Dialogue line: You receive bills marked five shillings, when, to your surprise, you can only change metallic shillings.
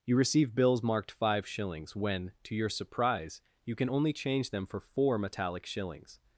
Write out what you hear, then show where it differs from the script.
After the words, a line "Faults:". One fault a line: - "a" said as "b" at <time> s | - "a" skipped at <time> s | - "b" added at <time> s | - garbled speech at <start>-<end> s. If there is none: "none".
You receive bills marked five shillings, when, to your surprise, you can only change them for four metallic shillings.
Faults:
- "them for four" added at 4.5 s